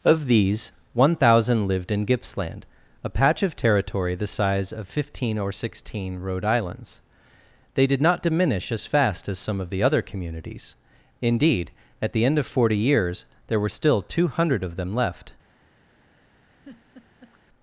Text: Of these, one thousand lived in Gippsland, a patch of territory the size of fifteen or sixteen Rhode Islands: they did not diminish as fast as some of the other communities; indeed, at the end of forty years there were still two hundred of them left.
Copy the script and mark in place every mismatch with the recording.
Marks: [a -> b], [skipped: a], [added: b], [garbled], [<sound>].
Of these, one thousand lived in Gippsland, a patch of territory the size of fifteen or sixteen Rhode Islands: they did not diminish as fast as some of the other communities; indeed, at the end of forty years there were still two hundred of them left. [laugh]